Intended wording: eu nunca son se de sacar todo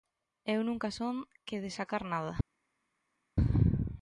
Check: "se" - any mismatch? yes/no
yes